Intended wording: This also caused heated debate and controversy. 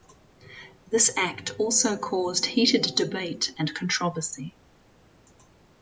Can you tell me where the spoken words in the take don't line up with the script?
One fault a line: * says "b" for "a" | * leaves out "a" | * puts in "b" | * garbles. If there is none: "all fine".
* puts in "act"